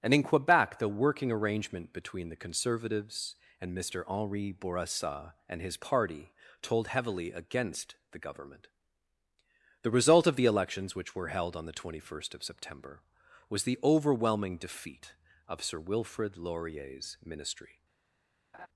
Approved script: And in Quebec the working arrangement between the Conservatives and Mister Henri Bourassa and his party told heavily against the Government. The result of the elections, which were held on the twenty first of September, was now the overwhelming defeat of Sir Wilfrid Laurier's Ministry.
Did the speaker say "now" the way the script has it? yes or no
no